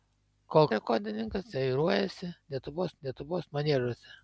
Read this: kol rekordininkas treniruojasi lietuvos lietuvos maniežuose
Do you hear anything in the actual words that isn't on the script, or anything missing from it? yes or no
no